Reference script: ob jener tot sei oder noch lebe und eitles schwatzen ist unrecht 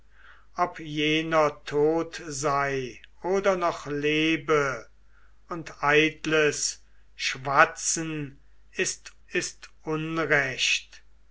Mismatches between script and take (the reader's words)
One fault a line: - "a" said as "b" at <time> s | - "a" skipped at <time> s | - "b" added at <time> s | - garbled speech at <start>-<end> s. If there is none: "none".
- "ist" added at 9.3 s